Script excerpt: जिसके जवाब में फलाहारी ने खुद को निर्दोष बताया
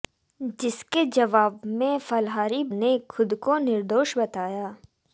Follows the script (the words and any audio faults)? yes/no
yes